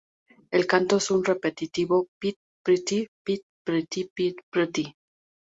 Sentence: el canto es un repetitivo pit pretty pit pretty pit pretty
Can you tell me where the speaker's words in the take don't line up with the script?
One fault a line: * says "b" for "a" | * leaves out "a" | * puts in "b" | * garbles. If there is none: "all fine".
all fine